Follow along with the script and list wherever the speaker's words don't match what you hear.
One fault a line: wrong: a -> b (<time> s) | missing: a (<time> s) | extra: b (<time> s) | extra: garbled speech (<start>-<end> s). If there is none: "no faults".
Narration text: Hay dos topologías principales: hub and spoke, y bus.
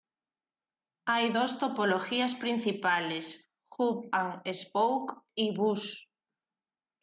no faults